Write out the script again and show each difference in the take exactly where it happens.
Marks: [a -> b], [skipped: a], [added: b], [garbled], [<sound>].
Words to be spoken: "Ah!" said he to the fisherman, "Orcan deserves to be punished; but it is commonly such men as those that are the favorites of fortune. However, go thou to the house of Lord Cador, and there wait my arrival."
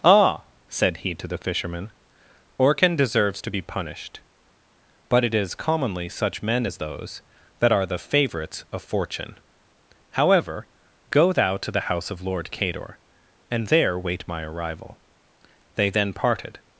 "Ah!" said he to the fisherman, "Orcan deserves to be punished; but it is commonly such men as those that are the favorites of fortune. However, go thou to the house of Lord Cador, and there wait my arrival." [added: They then parted]